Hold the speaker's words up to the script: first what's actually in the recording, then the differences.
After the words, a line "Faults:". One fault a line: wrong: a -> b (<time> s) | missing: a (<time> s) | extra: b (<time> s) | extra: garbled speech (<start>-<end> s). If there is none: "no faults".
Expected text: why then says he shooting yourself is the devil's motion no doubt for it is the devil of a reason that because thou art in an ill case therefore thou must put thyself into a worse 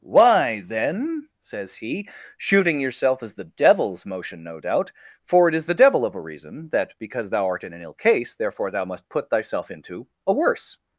why then says he shooting yourself is the devil's motion no doubt for it is the devil of a reason that because thou art in an ill case therefore thou must put thyself into a worse
Faults:
no faults